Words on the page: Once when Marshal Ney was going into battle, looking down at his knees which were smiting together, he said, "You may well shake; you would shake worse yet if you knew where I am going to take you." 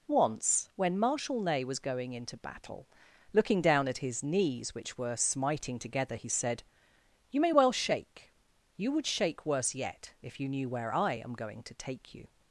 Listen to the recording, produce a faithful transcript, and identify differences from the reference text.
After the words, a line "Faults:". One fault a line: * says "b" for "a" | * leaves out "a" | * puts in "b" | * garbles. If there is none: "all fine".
Once when Marshal Ney was going into battle, looking down at his knees which were smiting together, he said, "You may well shake; you would shake worse yet if you knew where I am going to take you."
Faults:
all fine